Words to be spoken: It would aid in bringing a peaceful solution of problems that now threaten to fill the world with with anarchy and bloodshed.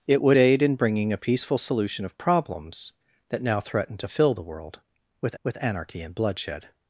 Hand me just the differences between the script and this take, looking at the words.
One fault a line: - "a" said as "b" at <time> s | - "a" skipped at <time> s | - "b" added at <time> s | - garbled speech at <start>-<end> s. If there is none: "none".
none